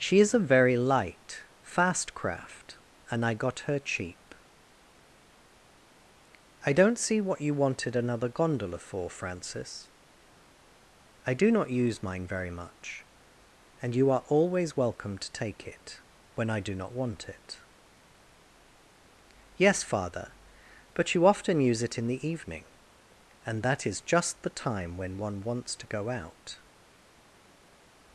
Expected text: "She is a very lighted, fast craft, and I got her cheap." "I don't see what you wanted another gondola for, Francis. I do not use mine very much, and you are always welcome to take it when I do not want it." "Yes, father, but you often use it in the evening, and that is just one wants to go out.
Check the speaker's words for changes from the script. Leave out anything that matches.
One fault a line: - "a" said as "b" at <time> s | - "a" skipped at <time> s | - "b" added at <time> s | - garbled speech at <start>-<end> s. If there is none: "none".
- "lighted" said as "light" at 0.8 s
- "the time when" added at 24.4 s